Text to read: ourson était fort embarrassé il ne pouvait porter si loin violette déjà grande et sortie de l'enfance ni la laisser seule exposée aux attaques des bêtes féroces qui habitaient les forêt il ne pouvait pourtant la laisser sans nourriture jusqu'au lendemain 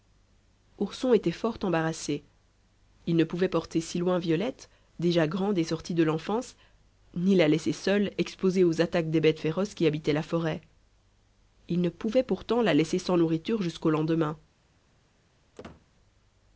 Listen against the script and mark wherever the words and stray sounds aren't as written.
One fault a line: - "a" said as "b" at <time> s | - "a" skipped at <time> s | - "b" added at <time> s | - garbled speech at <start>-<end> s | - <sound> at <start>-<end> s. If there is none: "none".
- "les" said as "la" at 10.1 s
- squeak at 15.6-15.9 s